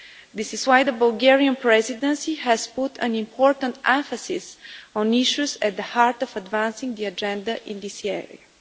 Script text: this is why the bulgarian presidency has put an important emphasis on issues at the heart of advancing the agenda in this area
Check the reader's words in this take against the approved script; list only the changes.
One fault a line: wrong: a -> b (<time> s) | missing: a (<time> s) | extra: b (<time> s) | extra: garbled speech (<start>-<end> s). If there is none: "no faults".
no faults